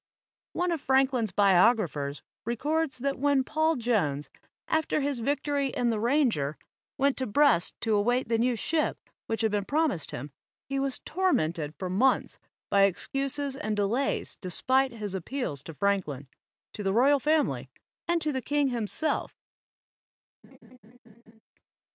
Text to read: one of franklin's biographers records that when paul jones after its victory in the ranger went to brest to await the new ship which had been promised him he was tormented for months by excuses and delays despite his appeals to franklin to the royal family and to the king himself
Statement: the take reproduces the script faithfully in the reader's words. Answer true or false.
false